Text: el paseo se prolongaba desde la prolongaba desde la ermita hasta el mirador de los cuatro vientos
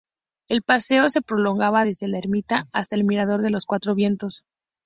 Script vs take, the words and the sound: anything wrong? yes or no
yes